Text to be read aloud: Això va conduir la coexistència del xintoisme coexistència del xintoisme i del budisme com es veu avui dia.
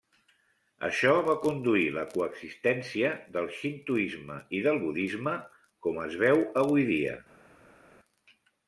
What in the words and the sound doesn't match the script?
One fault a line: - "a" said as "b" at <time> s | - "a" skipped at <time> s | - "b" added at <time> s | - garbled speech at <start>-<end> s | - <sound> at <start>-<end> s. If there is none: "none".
- "coexistència del xintoisme" skipped at 4.4 s